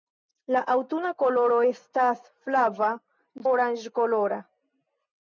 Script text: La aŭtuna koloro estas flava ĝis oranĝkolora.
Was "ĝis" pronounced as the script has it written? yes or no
no